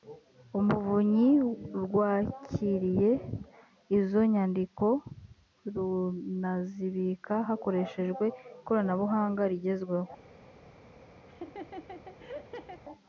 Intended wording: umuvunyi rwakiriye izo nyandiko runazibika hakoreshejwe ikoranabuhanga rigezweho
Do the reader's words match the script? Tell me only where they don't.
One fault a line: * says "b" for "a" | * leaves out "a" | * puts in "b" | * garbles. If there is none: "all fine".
all fine